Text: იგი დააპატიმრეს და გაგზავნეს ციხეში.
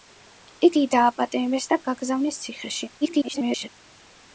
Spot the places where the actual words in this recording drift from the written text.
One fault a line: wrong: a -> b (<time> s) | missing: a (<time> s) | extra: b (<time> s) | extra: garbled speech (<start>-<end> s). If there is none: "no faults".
extra: garbled speech (3.0-3.7 s)